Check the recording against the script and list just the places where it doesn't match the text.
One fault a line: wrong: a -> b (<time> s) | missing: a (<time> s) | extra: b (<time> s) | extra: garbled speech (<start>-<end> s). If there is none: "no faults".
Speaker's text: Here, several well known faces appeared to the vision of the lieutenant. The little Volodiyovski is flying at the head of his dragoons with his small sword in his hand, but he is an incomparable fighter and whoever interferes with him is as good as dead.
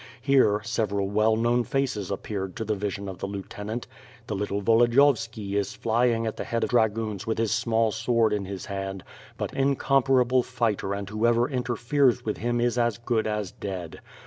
missing: his (6.7 s)
missing: he is an (9.5 s)